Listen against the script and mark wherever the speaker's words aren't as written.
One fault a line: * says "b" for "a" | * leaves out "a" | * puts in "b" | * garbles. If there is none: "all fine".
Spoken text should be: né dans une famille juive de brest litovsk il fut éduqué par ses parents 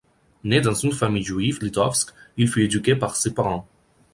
* leaves out "de brest"